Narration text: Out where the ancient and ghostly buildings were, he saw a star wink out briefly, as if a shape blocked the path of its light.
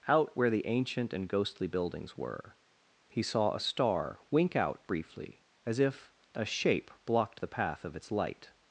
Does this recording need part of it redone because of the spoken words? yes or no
no